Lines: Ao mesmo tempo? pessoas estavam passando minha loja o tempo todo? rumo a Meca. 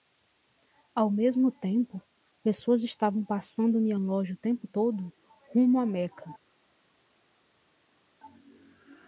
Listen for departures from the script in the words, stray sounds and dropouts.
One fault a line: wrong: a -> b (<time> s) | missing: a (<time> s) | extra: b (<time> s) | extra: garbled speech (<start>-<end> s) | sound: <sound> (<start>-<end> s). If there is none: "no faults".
no faults